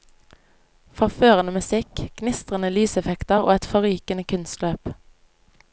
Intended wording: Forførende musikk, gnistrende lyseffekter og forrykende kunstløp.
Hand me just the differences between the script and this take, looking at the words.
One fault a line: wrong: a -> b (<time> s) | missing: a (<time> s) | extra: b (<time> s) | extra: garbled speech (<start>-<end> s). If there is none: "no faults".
extra: et (3.5 s)